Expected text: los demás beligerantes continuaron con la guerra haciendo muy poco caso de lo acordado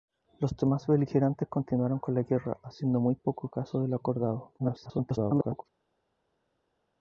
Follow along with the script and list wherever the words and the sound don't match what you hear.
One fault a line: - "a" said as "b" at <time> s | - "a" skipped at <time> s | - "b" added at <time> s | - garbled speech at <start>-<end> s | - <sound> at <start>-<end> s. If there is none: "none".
- garbled speech at 4.6-5.6 s